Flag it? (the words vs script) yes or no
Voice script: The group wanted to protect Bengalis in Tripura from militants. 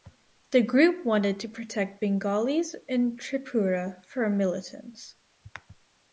no